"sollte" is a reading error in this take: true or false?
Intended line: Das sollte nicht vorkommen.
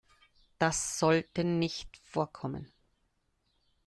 false